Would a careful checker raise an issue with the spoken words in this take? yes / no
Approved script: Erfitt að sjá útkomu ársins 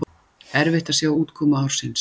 no